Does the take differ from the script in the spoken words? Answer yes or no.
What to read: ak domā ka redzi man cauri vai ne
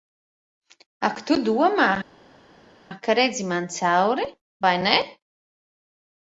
yes